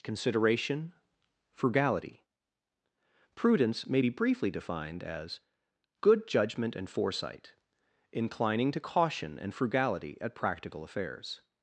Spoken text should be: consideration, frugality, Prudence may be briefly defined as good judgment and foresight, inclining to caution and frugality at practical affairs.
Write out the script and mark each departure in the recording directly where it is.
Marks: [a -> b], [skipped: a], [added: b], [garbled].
consideration, frugality, Prudence may be briefly defined as good judgment and foresight, inclining to caution and frugality at practical affairs.